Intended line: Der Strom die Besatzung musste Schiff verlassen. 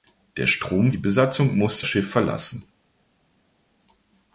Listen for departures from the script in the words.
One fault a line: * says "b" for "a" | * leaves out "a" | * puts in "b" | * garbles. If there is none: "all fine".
all fine